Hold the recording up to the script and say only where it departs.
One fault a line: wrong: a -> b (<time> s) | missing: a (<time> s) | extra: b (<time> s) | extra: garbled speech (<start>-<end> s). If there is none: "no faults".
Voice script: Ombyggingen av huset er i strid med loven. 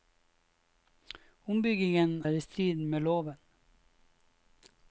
missing: av huset (2.2 s)